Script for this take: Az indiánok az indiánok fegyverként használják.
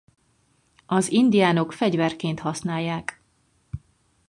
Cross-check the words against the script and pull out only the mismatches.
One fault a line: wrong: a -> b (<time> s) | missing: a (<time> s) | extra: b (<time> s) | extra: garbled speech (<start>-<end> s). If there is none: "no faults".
missing: az indiánok (1.7 s)